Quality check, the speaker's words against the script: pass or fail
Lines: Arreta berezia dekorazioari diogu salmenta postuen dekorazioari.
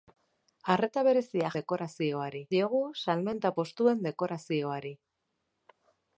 pass